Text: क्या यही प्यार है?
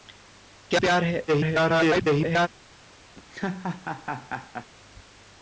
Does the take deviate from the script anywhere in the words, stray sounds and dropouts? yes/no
yes